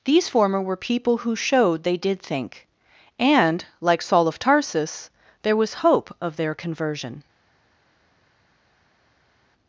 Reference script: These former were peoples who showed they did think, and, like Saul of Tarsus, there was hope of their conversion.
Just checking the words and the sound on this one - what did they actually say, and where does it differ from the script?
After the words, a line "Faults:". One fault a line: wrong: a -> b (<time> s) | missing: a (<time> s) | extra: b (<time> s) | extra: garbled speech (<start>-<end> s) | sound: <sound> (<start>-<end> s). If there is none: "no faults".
These former were people who showed they did think, and, like Saul of Tarsus, there was hope of their conversion.
Faults:
wrong: peoples -> people (0.8 s)